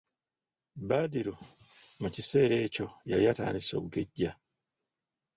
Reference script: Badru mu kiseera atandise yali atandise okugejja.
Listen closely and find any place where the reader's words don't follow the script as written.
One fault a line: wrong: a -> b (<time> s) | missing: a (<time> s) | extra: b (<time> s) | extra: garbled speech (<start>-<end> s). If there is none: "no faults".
wrong: atandise -> ekyo (2.6 s)